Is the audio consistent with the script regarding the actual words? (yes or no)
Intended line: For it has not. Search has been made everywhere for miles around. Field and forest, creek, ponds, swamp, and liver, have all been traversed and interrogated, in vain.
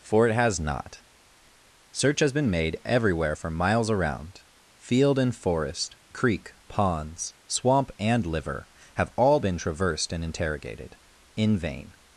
yes